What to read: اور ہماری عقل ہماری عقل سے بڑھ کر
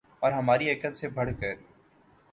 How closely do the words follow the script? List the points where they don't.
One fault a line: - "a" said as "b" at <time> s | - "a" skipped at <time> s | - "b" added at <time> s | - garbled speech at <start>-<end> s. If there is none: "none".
- "ہماری عقل" skipped at 0.9 s